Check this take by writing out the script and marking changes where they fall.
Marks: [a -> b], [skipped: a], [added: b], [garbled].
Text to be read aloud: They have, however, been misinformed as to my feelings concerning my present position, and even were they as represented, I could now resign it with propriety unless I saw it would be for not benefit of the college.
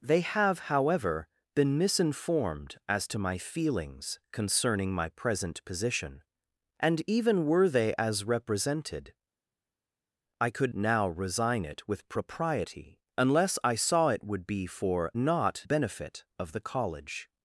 They have, however, been misinformed as to my feelings concerning my present position, and even were they as represented, I could now resign it with propriety unless I saw it would be for not benefit of the college.